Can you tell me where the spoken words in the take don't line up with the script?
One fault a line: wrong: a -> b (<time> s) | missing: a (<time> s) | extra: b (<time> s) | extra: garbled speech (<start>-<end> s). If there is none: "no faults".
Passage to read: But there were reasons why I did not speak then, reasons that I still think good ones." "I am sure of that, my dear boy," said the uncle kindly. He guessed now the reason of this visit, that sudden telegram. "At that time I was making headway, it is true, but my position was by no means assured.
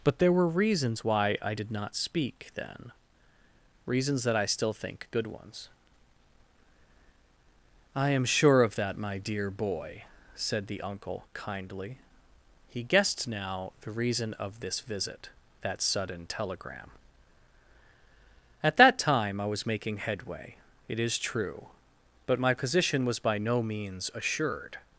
no faults